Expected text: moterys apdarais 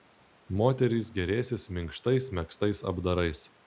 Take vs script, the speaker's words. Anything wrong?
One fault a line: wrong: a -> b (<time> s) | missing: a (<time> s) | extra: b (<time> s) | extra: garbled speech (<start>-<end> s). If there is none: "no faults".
extra: gėrėsis minkštais megztais (1.2 s)